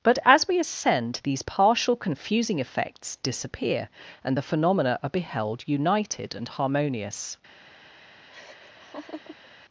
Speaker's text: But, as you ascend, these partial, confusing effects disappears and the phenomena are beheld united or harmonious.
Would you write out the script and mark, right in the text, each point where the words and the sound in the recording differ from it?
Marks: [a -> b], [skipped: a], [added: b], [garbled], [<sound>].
But, as [you -> we] ascend, these partial, confusing effects [disappears -> disappear] and the phenomena are beheld united [or -> and] harmonious. [laugh]